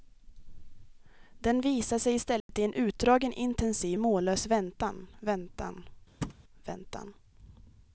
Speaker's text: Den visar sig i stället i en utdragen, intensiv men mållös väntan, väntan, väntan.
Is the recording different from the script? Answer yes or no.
yes